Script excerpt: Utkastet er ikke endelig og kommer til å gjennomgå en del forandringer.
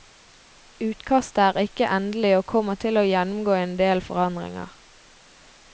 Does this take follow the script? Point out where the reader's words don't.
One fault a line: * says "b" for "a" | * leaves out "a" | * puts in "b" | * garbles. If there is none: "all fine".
all fine